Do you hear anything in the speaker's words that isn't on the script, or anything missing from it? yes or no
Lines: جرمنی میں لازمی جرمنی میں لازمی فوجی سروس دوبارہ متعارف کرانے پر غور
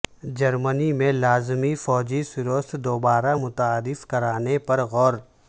yes